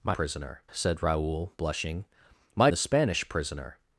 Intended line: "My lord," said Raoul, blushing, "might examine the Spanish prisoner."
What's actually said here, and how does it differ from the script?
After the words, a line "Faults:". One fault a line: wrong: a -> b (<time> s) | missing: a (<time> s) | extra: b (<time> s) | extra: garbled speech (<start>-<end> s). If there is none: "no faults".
"My prisoner," said Raoul, blushing, "might the Spanish prisoner."
Faults:
wrong: lord -> prisoner (0.1 s)
missing: examine (2.7 s)